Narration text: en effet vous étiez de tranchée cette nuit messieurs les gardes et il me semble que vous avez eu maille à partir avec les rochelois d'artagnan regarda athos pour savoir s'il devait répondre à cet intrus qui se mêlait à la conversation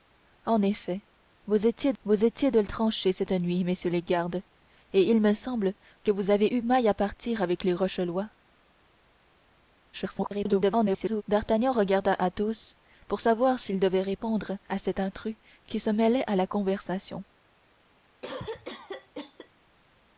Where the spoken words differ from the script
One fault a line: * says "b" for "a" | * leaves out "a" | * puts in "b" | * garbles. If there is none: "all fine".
* puts in "vous étiez"
* garbles